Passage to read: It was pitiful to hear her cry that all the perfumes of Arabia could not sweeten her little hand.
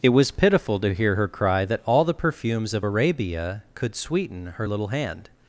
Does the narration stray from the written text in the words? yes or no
yes